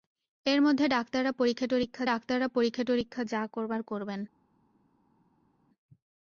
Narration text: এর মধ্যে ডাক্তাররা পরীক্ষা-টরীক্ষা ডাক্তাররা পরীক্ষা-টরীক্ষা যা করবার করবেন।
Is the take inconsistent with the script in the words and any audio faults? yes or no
no